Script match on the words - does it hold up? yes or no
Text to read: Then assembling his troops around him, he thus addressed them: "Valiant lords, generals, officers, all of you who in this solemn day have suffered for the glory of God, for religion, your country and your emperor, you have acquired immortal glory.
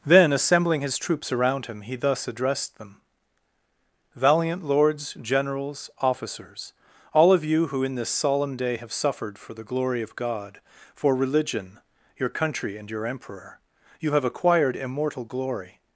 yes